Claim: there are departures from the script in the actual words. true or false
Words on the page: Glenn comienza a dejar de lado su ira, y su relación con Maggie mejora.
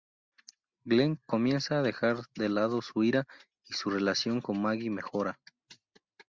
false